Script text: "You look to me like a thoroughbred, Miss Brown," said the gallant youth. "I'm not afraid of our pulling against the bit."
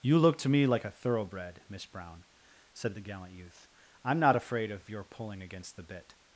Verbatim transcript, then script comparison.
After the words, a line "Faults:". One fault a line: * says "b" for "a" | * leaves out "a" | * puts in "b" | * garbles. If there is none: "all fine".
"You look to me like a thoroughbred, Miss Brown," said the gallant youth. "I'm not afraid of your pulling against the bit."
Faults:
* says "your" for "our"